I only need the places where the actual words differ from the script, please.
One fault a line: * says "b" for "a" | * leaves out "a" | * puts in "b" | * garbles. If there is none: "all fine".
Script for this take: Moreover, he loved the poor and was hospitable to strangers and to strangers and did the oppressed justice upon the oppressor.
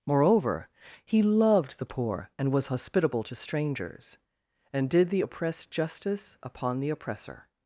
* leaves out "to strangers and"